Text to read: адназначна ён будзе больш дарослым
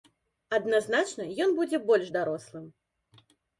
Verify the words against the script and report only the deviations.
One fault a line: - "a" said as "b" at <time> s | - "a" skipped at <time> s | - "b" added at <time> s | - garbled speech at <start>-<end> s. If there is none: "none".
none